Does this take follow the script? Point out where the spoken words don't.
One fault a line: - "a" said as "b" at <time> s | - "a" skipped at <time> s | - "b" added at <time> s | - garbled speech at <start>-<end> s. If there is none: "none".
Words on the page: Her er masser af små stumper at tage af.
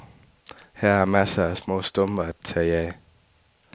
none